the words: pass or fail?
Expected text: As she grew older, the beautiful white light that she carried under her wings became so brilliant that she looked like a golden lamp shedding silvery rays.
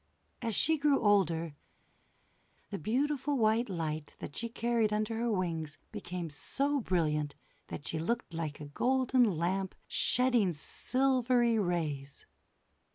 pass